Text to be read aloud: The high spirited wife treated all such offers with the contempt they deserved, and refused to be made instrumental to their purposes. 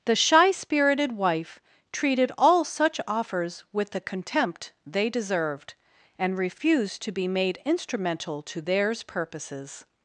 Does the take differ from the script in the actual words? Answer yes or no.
yes